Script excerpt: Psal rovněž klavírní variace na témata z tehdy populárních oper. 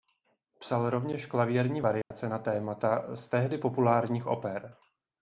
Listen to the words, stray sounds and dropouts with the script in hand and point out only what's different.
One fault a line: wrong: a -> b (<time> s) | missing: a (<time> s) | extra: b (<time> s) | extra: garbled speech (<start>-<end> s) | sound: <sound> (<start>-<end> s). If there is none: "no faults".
sound: dropout (2.0-2.1 s)